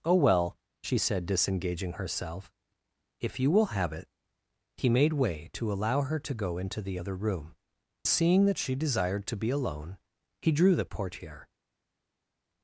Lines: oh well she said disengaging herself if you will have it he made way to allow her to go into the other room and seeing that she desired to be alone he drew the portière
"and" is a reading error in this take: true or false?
true